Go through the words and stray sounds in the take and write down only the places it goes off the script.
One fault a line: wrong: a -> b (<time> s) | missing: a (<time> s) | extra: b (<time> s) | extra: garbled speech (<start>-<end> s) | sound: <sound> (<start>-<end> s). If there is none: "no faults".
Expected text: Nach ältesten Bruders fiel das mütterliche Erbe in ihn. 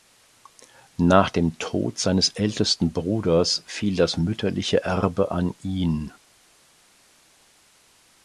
extra: dem Tod seines (1.3 s)
wrong: in -> an (5.3 s)